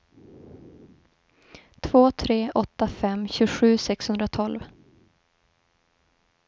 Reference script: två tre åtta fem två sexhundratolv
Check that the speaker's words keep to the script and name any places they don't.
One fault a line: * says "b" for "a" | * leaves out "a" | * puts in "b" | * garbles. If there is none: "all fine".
* says "tjugosju" for "två"